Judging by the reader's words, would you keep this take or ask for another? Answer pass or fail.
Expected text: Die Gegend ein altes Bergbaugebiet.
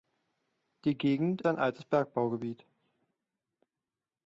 pass